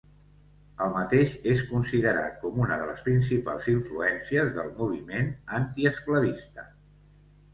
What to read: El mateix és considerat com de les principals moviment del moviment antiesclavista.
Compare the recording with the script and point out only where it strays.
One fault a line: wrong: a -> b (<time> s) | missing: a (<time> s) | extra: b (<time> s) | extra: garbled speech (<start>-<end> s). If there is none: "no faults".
extra: una (2.6 s)
wrong: moviment -> influències (3.7 s)